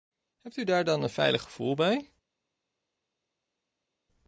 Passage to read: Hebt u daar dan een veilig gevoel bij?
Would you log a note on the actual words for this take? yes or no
no